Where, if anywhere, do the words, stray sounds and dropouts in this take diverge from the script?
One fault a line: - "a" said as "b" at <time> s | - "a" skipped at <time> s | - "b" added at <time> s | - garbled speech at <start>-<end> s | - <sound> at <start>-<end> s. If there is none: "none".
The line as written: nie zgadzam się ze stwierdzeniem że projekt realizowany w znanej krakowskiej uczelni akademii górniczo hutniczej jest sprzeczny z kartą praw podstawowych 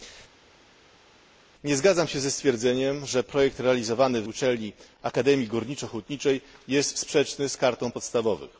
- "znanej krakowskiej" skipped at 4.3 s
- "praw" skipped at 7.9 s